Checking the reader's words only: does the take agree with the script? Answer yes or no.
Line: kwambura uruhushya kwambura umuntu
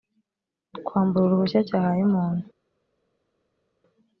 no